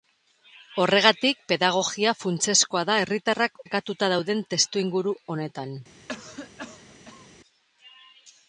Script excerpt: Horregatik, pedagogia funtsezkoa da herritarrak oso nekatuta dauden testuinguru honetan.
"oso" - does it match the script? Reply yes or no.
no